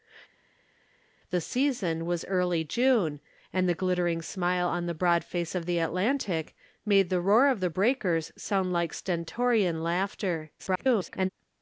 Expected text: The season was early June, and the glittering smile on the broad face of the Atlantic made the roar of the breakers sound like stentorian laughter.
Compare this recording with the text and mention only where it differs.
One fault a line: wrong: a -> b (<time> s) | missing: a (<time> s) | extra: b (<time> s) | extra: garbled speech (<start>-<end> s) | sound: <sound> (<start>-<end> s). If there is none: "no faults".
extra: garbled speech (10.6-11.3 s)